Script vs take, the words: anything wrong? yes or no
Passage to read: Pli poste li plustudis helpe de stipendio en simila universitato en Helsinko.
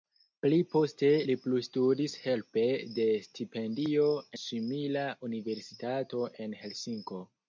yes